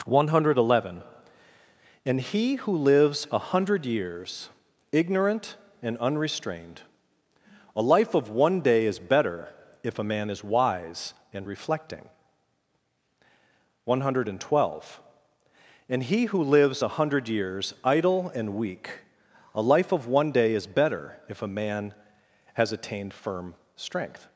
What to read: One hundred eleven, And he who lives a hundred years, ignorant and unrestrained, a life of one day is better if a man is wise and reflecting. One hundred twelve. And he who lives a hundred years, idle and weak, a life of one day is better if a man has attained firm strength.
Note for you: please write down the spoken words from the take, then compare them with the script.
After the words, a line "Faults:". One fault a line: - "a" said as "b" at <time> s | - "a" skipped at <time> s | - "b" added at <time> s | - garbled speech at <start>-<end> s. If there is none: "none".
One hundred eleven, And he who lives a hundred years, ignorant and unrestrained, a life of one day is better if a man is wise and reflecting. One hundred twelve. And he who lives a hundred years, idle and weak, a life of one day is better if a man has attained firm strength.
Faults:
none